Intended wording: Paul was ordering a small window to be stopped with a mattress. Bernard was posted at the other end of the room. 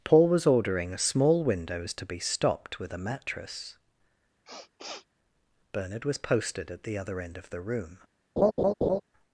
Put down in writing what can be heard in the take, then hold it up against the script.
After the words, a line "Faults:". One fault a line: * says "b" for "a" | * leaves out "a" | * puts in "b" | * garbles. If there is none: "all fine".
Paul was ordering a small windows to be stopped with a mattress. Bernard was posted at the other end of the room.
Faults:
* says "windows" for "window"